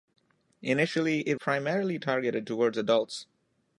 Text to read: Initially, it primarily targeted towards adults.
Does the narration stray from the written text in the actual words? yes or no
no